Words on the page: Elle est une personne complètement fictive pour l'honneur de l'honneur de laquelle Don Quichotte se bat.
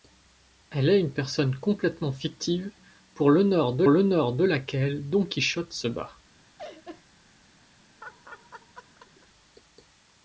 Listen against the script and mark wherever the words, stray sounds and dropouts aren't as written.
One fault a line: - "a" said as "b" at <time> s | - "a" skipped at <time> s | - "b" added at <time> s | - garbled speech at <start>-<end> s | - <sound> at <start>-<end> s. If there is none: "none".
- laugh at 6.6-7.0 s
- laugh at 8.0-9.3 s